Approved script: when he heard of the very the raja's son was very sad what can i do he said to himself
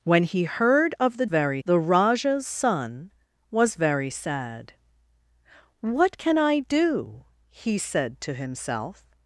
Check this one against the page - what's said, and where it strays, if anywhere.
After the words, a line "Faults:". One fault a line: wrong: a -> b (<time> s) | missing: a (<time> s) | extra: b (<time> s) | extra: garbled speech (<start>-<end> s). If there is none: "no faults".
when he heard of the very the raja's son was very sad what can i do he said to himself
Faults:
no faults